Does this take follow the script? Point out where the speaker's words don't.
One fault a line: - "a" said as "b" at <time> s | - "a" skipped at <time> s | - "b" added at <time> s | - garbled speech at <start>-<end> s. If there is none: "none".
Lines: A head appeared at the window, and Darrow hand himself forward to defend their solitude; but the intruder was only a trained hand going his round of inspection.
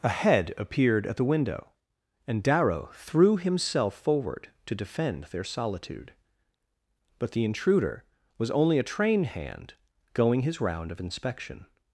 - "hand" said as "threw" at 3.0 s
- "trained" said as "train" at 8.9 s